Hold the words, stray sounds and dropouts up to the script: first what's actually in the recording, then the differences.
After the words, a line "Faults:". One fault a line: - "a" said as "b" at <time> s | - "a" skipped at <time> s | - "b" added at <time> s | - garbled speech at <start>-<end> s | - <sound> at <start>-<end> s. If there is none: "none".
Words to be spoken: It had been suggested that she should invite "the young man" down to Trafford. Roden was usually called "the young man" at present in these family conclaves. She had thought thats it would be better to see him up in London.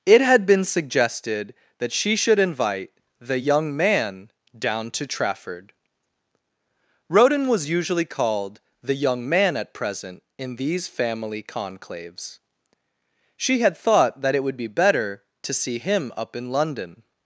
It had been suggested that she should invite "the young man" down to Trafford. Roden was usually called "the young man" at present in these family conclaves. She had thought that it would be better to see him up in London.
Faults:
- "thats" said as "that" at 14.2 s